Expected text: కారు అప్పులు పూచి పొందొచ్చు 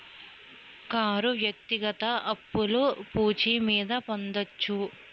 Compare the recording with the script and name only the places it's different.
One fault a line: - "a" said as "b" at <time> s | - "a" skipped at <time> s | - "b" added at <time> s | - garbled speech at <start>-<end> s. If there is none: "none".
- "వ్యక్తిగత" added at 1.4 s
- "మీద" added at 3.7 s